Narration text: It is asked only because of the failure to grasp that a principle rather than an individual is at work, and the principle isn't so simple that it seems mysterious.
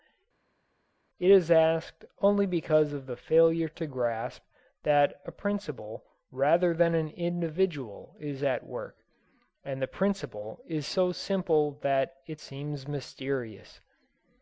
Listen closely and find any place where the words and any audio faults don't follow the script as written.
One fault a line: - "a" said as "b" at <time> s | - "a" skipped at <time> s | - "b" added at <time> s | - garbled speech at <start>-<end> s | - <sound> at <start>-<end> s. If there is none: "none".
- "isn't" said as "is" at 10.6 s